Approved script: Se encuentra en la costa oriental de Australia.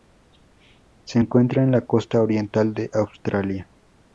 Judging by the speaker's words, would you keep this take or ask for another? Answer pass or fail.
pass